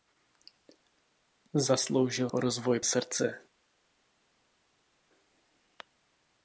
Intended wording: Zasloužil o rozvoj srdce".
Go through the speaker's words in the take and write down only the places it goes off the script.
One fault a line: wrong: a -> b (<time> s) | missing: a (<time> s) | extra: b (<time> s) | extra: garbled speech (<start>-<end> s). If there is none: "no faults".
no faults